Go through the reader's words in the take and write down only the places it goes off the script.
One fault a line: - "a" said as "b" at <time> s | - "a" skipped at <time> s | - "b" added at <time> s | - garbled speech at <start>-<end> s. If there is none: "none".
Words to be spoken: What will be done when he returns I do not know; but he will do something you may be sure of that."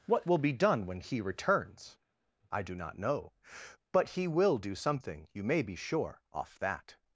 - "of" said as "off" at 6.3 s